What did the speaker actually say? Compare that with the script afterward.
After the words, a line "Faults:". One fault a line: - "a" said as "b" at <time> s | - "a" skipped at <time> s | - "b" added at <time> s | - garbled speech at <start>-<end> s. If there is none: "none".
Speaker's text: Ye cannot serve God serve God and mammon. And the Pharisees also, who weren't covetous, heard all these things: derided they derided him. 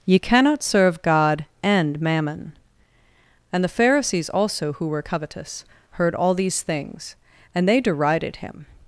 Ye cannot serve God and mammon. And the Pharisees also, who were covetous, heard all these things: and they derided him.
Faults:
- "serve God" skipped at 1.4 s
- "weren't" said as "were" at 4.9 s
- "derided" said as "and" at 7.5 s